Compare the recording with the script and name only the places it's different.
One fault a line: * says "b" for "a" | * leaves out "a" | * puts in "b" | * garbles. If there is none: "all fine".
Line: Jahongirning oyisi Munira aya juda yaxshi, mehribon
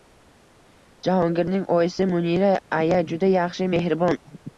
all fine